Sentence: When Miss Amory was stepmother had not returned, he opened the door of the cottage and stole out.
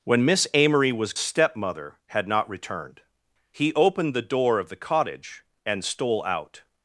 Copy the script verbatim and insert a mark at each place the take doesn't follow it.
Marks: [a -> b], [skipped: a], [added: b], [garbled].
When Miss Amory was stepmother had not returned, he opened the door of the cottage and stole out.